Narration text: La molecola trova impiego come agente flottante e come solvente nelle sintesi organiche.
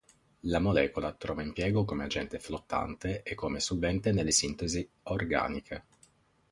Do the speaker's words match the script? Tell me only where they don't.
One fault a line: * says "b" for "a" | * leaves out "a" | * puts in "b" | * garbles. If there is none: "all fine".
all fine